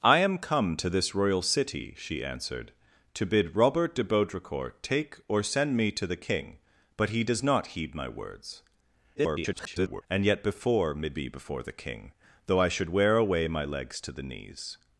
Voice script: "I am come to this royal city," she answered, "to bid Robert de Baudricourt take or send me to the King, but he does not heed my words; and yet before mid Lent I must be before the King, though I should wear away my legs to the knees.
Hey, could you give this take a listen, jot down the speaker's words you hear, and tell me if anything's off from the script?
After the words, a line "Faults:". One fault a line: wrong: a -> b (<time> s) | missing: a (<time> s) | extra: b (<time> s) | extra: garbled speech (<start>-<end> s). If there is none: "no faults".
"I am come to this royal city," she answered, "to bid Robert de Baudricourt take or send me to the King, but he does not heed my words; [garbled] and yet before mid Be before the King, though I should wear away my legs to the knees.
Faults:
extra: garbled speech (9.2-10.0 s)
missing: Lent I must (11.2 s)